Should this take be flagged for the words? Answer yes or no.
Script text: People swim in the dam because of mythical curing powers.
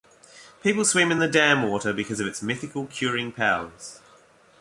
yes